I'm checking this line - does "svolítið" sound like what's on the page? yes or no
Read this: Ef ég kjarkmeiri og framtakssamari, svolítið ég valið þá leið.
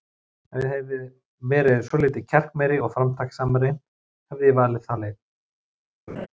no